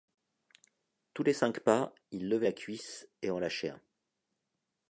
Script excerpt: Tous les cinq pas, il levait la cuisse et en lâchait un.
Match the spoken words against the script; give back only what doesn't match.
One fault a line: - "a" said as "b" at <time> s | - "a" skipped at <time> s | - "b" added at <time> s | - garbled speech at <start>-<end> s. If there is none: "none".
none